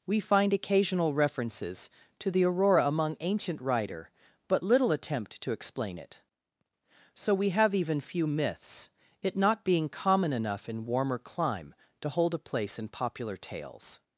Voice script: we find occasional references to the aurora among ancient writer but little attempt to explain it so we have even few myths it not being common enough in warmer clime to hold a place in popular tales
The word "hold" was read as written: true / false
true